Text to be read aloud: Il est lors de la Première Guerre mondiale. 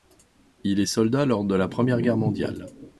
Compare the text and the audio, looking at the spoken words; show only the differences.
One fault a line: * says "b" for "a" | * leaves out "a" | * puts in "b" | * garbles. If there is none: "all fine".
* puts in "soldat"